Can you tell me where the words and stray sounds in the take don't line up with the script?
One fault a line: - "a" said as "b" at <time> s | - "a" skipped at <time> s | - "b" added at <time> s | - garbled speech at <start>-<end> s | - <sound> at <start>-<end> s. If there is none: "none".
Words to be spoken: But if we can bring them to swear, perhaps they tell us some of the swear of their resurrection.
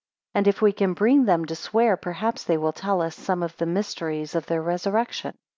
- "But" said as "And" at 0.3 s
- "will" added at 2.6 s
- "swear" said as "mysteries" at 3.7 s